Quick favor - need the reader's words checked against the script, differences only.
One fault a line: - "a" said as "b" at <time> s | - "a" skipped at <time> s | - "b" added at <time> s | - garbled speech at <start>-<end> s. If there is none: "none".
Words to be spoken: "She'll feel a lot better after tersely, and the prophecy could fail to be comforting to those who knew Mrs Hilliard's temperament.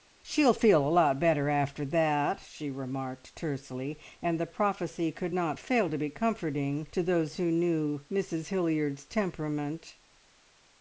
- "that she remarked" added at 1.9 s
- "not" added at 5.3 s